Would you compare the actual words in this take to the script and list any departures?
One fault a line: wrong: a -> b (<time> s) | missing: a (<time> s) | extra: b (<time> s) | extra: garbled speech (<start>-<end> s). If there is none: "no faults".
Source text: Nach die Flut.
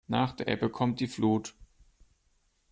extra: der Ebbe kommt (0.3 s)